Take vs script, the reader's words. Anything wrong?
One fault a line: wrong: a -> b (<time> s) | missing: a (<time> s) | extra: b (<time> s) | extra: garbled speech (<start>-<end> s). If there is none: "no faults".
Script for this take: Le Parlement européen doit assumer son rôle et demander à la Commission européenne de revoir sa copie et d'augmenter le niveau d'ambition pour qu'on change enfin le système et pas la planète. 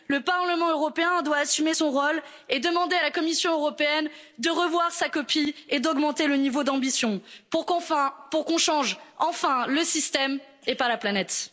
no faults